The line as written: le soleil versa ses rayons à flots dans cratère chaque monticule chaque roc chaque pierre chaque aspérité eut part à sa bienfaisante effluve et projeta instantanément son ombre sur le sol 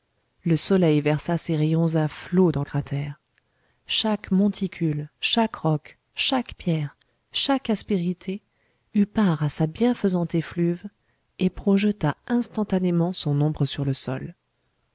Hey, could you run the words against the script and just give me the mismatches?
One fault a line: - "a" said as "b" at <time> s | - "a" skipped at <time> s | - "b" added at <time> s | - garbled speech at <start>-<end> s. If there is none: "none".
none